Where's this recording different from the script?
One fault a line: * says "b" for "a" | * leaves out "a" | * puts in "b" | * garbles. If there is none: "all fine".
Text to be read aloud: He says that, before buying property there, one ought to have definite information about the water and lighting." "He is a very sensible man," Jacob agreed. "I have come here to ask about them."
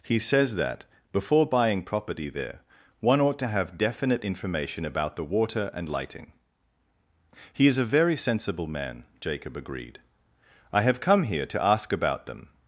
all fine